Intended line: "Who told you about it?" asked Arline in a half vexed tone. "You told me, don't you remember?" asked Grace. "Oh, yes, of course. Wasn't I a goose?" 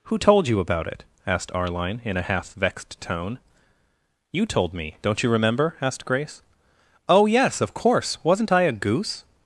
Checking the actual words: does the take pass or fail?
pass